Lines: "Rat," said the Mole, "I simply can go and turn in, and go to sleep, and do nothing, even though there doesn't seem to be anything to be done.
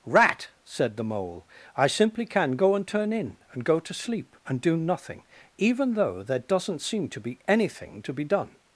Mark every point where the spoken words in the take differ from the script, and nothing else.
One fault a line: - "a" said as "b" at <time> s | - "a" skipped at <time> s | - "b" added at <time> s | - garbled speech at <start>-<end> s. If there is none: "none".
none